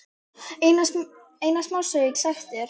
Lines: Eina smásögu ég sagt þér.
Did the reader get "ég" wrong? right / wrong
right